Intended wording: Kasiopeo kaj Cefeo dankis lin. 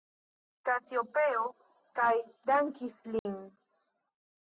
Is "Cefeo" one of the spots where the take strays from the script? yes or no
yes